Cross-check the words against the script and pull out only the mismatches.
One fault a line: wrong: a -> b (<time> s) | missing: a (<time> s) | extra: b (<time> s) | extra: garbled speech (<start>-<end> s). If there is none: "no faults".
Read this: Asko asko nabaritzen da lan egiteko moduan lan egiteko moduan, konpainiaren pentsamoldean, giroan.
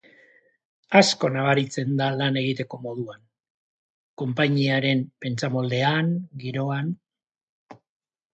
missing: asko (1.3 s)
missing: lan egiteko moduan (3.2 s)